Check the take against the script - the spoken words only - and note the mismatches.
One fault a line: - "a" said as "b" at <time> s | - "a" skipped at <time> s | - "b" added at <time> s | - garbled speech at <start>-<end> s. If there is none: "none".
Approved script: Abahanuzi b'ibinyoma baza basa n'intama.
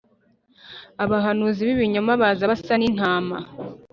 none